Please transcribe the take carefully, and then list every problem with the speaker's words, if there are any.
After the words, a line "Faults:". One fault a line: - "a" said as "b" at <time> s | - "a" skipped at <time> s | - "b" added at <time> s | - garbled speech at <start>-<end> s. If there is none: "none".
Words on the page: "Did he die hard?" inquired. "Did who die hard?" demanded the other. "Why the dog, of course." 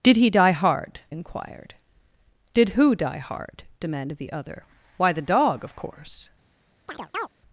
"Did he die hard?" inquired. "Did who die hard?" demanded the other. "Why the dog, of course."
Faults:
none